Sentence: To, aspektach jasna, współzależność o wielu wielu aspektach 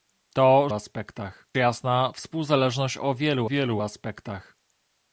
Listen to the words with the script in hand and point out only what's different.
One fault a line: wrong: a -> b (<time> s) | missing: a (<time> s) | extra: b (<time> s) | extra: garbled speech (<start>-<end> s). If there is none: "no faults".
no faults